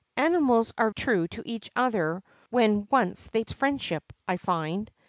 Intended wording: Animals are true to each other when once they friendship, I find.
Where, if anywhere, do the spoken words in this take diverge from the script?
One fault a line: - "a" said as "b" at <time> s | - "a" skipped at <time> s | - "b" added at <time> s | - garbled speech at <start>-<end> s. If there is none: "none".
none